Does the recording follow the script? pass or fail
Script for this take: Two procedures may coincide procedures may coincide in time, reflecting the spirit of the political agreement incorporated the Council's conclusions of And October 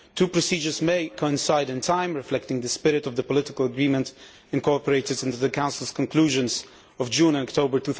fail